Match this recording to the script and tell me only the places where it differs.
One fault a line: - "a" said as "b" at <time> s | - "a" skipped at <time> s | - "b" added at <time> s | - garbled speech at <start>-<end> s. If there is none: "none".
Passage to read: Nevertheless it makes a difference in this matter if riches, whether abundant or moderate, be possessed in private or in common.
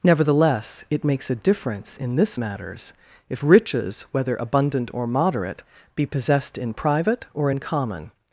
- "matter" said as "matters" at 2.4 s